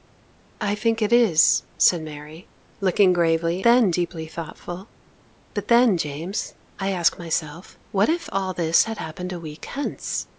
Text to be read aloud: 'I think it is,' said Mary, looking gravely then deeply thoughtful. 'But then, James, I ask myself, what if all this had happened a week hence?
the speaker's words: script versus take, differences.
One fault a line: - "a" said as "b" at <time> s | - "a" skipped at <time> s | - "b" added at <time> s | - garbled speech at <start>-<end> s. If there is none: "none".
none